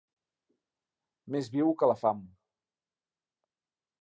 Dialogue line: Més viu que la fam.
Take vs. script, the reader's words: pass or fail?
pass